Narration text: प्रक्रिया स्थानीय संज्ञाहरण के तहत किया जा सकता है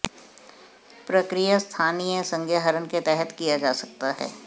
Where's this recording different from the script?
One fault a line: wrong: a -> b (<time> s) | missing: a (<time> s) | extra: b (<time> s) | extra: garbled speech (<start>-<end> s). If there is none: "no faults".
no faults